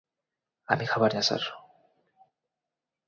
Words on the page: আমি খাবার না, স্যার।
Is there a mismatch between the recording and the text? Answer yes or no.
no